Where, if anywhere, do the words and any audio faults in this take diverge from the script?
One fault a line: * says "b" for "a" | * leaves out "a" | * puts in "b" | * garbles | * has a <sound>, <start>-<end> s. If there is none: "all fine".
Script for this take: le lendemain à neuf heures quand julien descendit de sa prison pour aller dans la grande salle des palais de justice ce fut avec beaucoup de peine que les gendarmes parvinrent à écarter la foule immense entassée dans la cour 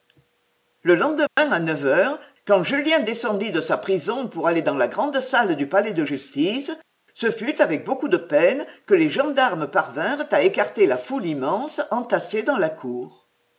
* has a dropout, 1.3-1.4 s
* says "du" for "des"